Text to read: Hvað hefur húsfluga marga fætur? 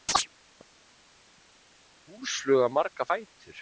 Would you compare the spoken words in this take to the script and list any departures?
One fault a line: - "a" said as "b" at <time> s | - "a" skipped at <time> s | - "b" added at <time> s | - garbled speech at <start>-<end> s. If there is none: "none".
none